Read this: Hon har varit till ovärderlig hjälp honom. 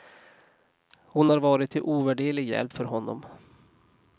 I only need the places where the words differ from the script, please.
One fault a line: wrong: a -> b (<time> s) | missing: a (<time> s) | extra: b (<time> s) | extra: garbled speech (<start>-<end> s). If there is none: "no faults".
extra: för (2.7 s)